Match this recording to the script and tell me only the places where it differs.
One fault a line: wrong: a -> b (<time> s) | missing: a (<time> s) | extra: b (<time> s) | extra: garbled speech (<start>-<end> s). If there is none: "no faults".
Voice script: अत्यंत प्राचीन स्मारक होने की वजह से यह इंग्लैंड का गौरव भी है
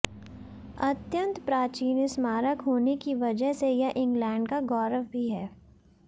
no faults